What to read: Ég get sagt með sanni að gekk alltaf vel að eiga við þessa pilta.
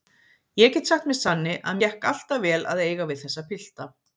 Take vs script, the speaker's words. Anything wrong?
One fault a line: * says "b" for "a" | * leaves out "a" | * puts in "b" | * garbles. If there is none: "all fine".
all fine